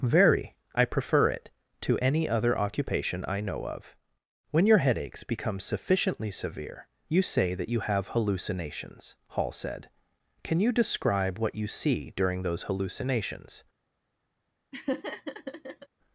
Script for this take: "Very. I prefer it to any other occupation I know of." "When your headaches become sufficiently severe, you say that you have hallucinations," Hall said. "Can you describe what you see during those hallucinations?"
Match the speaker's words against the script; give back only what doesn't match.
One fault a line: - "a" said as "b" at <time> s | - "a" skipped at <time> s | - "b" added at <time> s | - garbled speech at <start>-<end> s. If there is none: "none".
none